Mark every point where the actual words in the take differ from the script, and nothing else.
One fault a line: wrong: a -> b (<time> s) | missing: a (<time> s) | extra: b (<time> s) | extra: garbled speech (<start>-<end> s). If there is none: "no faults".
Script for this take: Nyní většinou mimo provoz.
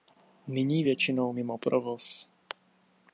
no faults